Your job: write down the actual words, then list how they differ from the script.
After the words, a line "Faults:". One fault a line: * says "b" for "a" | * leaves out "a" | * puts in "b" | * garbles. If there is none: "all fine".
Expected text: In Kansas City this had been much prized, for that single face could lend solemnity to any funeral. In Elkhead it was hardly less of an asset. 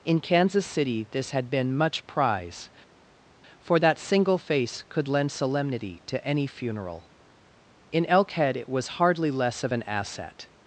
In Kansas City this had been much prize, for that single face could lend solemnity to any funeral. In Elkhead it was hardly less of an asset.
Faults:
* says "prize" for "prized"